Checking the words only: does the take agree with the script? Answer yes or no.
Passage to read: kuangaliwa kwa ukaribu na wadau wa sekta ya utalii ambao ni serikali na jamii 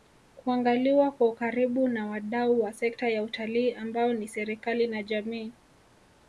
yes